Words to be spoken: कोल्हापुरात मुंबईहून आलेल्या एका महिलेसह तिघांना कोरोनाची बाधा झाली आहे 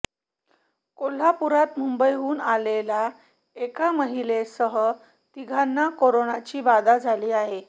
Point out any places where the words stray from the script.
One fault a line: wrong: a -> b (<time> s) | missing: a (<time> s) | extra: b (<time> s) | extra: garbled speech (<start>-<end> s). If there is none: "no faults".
no faults